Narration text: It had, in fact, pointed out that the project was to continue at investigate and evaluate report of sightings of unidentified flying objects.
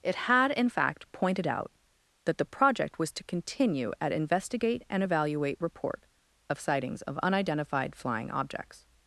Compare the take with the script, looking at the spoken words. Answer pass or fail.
pass